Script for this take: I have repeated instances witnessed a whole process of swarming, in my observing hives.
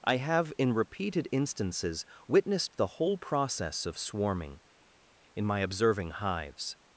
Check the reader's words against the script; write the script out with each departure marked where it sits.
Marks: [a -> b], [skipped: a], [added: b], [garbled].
I have [added: in] repeated instances witnessed [a -> the] whole process of swarming, in my observing hives.